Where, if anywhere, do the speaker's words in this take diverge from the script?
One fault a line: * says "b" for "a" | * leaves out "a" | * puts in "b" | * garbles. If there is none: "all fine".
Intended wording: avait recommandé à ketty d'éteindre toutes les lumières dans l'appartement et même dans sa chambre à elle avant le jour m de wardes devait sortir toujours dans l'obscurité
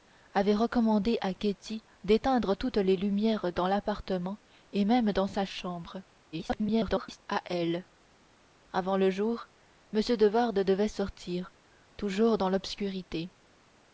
* garbles